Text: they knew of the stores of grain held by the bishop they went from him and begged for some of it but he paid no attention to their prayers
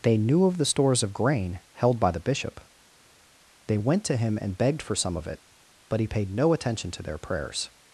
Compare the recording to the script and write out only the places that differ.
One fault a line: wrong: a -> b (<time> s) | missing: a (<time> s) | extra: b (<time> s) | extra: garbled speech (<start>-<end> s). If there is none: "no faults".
wrong: from -> to (4.0 s)